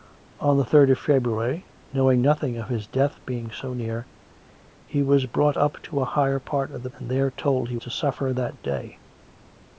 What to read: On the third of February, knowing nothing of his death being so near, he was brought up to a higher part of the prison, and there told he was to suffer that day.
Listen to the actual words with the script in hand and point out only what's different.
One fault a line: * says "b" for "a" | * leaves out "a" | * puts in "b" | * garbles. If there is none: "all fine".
* leaves out "prison"
* leaves out "was"